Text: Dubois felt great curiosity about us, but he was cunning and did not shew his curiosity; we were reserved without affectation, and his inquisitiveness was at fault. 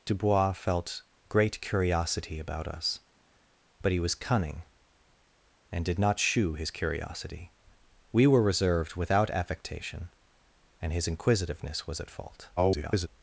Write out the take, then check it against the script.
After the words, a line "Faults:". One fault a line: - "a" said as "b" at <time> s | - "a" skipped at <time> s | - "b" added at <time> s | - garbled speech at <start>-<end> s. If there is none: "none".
Dubois felt great curiosity about us, but he was cunning and did not shew his curiosity; we were reserved without affectation, and his inquisitiveness was at fault. [garbled]
Faults:
- garbled speech at 12.6-13.1 s